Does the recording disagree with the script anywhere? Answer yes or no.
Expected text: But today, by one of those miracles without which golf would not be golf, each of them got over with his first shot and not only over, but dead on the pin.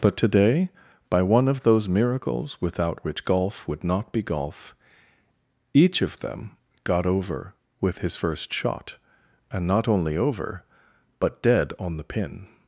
no